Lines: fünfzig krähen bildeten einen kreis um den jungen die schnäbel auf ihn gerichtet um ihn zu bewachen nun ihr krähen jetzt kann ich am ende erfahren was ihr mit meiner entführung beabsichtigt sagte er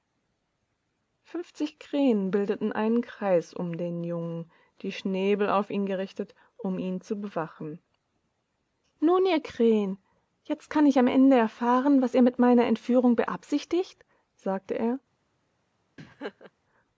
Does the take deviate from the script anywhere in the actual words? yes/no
no